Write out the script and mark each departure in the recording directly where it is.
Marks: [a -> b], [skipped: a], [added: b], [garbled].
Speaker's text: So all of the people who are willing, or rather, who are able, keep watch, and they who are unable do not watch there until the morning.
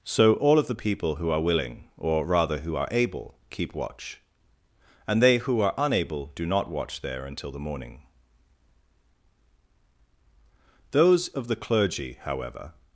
So all of the people who are willing, or rather, who are able, keep watch, and they who are unable do not watch there until the morning. [added: Those of the clergy however]